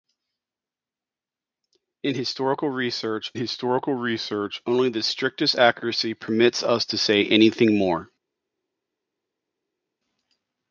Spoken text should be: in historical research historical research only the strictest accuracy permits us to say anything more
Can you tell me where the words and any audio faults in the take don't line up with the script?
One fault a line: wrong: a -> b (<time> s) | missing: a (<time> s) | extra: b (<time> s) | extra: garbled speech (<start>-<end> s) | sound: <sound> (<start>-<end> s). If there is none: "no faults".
no faults